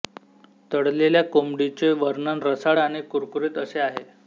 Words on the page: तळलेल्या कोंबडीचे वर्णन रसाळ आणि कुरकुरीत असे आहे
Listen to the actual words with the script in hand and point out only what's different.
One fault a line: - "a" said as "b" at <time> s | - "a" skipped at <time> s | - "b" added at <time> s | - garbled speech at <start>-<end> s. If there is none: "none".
none